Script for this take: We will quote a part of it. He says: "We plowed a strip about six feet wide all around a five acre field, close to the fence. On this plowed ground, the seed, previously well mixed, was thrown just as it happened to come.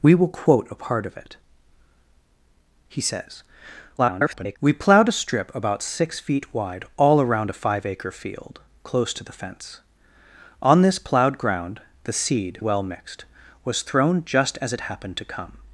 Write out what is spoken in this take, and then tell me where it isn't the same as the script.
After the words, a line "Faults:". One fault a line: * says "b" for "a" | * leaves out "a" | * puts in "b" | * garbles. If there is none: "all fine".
We will quote a part of it. He says: [garbled] "We plowed a strip about six feet wide all around a five acre field, close to the fence. On this plowed ground, the seed, well mixed, was thrown just as it happened to come.
Faults:
* garbles
* leaves out "previously"